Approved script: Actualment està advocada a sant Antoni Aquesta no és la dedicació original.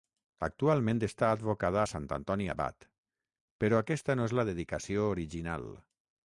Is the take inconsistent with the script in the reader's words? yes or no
yes